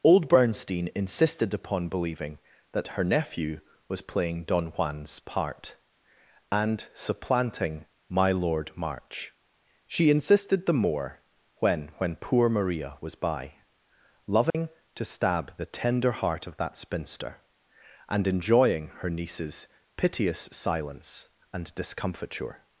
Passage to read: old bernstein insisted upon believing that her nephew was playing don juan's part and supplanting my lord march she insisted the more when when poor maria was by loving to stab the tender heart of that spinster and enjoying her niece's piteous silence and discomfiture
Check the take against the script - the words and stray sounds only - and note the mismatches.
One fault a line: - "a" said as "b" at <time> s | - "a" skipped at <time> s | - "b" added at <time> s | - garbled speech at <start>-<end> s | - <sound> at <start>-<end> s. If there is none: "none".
- dropout at 14.5-14.5 s